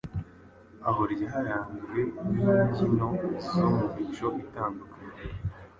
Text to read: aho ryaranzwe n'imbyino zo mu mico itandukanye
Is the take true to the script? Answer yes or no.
yes